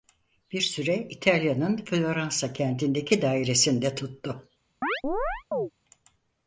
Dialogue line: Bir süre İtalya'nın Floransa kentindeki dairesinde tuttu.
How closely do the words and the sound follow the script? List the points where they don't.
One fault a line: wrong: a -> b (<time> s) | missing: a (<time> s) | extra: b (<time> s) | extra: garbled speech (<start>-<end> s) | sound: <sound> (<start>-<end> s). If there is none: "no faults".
sound: chirp (4.8-5.7 s)